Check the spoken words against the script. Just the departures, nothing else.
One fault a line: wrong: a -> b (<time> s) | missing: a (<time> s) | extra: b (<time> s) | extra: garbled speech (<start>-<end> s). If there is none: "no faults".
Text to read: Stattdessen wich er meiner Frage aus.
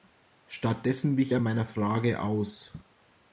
no faults